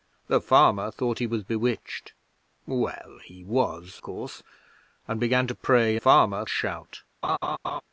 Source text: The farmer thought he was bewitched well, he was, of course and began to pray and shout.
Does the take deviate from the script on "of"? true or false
true